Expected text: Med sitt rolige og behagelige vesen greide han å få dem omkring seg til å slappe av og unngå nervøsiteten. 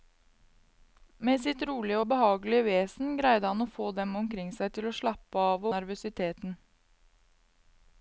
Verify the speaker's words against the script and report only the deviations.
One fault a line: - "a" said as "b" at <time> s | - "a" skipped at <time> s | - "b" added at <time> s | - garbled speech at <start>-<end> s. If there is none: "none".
- "og unngå" skipped at 5.7 s